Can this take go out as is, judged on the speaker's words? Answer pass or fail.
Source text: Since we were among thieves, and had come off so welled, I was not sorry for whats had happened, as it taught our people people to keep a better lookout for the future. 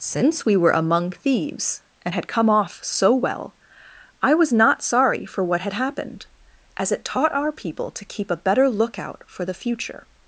fail